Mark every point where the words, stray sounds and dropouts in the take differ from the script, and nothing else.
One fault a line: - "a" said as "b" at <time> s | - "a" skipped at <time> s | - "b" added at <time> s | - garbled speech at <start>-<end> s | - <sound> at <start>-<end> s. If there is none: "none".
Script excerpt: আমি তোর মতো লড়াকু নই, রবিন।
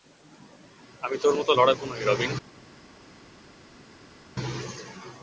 none